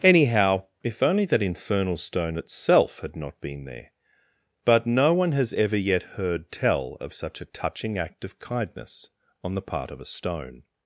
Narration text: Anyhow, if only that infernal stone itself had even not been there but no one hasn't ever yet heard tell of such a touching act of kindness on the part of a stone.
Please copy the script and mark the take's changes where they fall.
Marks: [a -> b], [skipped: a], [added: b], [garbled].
Anyhow, if only that infernal stone itself had [skipped: even] not been there but no one [hasn't -> has] ever yet heard tell of such a touching act of kindness on the part of a stone.